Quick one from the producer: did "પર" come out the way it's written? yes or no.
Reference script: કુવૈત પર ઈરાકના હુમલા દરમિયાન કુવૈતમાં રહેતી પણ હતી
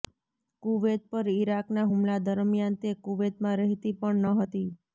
yes